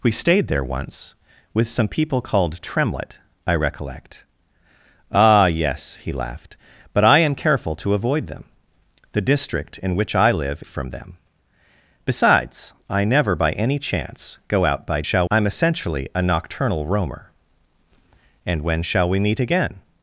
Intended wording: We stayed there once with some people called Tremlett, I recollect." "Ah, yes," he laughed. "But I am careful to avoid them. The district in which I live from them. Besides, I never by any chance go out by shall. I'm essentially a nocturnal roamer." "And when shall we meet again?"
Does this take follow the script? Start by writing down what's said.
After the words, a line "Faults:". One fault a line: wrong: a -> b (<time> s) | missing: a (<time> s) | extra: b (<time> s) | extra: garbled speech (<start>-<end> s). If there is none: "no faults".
We stayed there once with some people called Tremlett, I recollect." "Ah, yes," he laughed. "But I am careful to avoid them. The district in which I live from them. Besides, I never by any chance go out by shall. I'm essentially a nocturnal roamer." "And when shall we meet again?"
Faults:
no faults